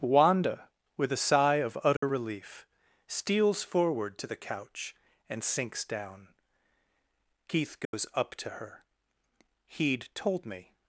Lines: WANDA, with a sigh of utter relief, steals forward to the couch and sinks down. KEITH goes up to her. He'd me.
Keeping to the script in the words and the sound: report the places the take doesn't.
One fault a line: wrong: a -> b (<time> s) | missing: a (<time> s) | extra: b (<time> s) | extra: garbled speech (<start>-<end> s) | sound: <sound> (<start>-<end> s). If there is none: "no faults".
sound: dropout (2.0-2.0 s)
sound: dropout (7.8-7.9 s)
extra: told (10.1 s)